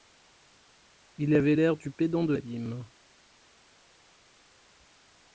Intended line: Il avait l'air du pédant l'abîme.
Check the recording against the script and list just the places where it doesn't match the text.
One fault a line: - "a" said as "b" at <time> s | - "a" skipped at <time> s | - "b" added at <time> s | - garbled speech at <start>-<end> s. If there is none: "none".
- "de" added at 2.2 s